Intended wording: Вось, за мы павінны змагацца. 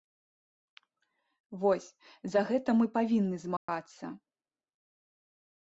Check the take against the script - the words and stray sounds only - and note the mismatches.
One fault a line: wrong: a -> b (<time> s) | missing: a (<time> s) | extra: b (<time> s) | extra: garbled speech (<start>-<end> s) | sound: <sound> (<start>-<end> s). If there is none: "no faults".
extra: гэта (2.5 s)
sound: dropout (3.6-3.7 s)